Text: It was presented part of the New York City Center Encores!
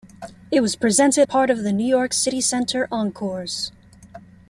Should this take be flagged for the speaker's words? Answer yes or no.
no